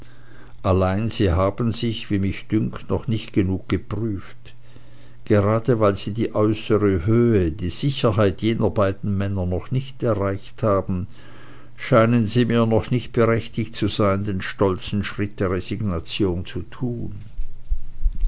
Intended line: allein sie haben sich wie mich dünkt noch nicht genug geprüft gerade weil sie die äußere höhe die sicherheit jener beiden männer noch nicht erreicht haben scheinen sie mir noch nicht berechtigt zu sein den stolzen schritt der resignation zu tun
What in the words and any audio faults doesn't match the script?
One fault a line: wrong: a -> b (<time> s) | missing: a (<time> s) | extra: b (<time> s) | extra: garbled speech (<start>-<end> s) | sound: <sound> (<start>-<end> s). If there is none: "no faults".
no faults